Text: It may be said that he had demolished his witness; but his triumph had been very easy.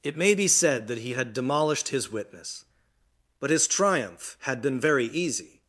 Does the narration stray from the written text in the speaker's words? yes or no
no